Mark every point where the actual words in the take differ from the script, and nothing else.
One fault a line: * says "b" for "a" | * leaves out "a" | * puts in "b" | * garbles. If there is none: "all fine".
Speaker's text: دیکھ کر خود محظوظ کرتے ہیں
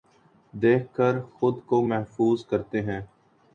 * puts in "کو"